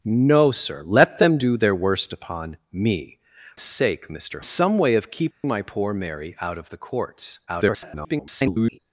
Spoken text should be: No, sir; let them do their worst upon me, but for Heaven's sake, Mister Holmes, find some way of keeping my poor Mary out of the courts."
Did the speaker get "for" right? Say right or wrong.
wrong